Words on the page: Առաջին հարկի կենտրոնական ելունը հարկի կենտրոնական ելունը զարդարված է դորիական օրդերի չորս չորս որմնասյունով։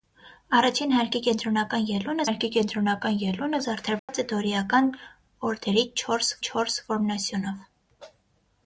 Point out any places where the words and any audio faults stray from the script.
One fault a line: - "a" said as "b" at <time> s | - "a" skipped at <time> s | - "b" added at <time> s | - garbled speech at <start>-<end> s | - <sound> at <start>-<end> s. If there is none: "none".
- dropout at 4.0-4.1 s